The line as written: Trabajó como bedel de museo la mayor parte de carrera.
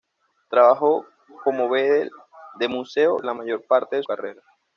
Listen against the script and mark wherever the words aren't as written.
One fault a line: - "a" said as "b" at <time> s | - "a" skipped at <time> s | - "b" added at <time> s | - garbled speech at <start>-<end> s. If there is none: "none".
none